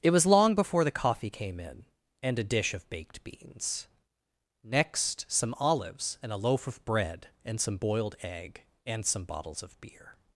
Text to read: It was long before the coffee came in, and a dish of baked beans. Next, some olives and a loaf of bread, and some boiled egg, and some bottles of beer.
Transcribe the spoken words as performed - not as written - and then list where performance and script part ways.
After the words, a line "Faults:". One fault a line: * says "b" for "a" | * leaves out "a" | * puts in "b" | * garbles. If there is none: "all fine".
It was long before the coffee came in, and a dish of baked beans. Next, some olives and a loaf of bread, and some boiled egg, and some bottles of beer.
Faults:
all fine